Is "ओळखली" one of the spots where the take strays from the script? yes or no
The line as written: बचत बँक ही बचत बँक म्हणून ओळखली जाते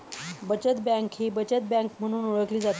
no